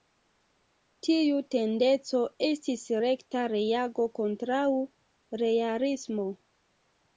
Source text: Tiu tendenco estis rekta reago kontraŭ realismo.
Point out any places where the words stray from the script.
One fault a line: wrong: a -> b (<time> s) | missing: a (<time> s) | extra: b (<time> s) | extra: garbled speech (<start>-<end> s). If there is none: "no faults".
no faults